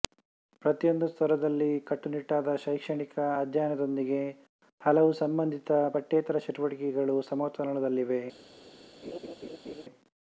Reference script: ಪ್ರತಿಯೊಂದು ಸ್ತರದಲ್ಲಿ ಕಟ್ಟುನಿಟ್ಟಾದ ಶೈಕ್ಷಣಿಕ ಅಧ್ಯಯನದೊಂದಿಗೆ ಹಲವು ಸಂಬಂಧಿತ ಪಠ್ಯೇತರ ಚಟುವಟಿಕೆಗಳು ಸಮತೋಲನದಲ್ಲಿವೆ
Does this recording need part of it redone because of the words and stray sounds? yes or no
yes